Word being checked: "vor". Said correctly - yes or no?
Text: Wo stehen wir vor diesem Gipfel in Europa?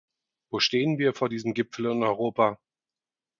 yes